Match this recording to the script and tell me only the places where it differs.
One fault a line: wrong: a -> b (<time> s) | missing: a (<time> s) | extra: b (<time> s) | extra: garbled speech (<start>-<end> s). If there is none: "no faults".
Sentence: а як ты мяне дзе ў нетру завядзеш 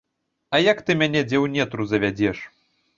no faults